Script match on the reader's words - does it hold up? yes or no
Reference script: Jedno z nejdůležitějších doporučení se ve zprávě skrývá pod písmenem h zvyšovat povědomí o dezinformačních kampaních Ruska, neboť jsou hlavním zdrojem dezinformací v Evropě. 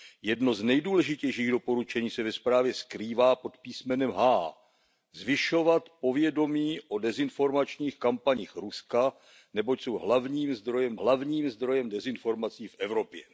no